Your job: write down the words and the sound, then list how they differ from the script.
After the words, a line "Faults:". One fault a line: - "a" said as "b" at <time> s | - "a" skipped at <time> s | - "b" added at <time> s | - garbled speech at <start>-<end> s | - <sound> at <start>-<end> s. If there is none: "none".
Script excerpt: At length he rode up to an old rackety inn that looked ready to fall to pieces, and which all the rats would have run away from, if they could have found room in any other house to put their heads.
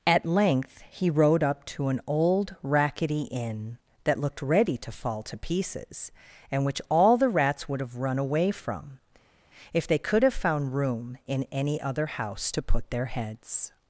At length he rode up to an old rackety inn that looked ready to fall to pieces, and which all the rats would have run away from, if they could have found room in any other house to put their heads.
Faults:
none